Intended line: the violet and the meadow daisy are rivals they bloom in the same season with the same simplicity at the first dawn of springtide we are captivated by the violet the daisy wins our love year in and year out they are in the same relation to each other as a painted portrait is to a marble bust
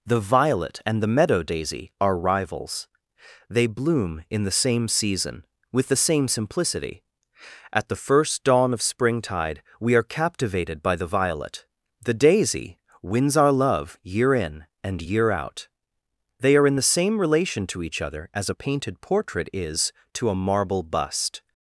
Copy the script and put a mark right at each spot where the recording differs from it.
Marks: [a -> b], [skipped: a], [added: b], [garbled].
the violet and the meadow daisy are rivals they bloom in the same season with the same simplicity at the first dawn of springtide we are captivated by the violet the daisy wins our love year in and year out they are in the same relation to each other as a painted portrait is to a marble bust